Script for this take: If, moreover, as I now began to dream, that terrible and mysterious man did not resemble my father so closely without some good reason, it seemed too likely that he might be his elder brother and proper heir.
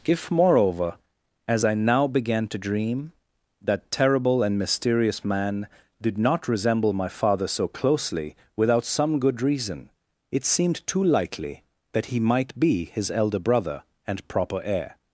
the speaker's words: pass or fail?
pass